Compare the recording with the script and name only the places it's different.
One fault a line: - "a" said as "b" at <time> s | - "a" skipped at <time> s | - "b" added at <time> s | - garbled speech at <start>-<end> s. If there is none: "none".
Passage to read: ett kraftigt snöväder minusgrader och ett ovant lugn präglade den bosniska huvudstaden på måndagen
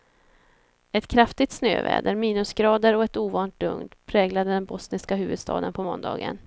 none